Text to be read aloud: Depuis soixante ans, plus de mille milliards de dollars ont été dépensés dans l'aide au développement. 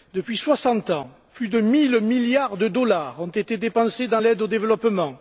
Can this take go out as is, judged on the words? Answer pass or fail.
pass